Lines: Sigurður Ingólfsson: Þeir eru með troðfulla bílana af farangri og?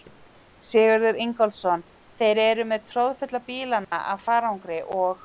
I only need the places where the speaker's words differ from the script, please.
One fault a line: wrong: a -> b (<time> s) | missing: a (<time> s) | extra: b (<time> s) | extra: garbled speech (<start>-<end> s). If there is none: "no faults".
no faults